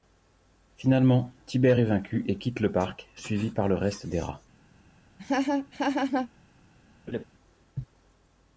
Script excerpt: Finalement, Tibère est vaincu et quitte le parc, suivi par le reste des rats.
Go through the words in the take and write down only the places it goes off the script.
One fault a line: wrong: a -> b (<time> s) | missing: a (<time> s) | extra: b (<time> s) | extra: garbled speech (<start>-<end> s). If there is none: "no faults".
no faults